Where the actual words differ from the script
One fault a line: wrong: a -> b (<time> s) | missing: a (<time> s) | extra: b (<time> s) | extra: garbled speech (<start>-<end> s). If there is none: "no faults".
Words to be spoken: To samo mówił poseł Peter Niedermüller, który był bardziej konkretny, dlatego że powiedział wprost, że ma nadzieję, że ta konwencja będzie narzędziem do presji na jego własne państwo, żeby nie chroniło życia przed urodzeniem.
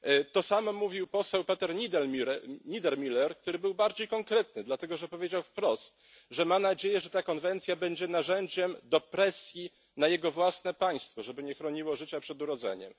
no faults